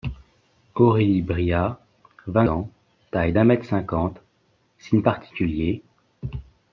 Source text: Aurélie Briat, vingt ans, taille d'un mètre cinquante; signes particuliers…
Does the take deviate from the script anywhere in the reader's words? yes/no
no